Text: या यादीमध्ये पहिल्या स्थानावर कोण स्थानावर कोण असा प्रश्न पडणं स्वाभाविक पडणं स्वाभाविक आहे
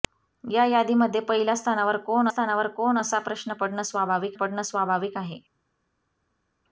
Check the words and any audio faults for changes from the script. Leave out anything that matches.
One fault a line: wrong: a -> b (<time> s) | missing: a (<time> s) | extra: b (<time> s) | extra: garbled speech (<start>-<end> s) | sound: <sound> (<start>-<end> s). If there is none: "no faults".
no faults